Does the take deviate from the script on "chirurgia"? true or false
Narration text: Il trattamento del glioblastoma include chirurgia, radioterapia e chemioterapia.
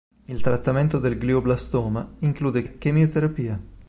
true